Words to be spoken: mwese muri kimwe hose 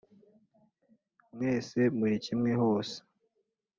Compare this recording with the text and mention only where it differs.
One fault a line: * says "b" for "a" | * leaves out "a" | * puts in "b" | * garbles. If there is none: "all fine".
all fine